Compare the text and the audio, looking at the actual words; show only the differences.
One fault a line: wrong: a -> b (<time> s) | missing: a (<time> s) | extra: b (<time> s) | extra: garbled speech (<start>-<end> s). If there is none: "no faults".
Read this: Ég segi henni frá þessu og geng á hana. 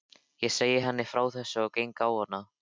no faults